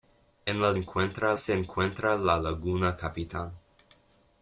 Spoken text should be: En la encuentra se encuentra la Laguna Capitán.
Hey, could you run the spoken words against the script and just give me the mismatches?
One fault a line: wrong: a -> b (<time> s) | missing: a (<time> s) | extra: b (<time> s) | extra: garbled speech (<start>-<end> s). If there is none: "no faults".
no faults